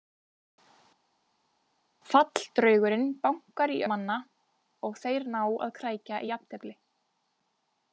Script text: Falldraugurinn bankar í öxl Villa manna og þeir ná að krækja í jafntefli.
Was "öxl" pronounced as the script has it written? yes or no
no